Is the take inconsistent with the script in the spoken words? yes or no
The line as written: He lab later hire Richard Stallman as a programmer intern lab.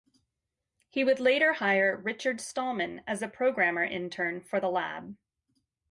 yes